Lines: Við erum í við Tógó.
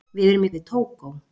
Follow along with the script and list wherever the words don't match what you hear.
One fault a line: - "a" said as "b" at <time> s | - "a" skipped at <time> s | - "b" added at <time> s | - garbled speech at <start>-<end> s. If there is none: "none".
none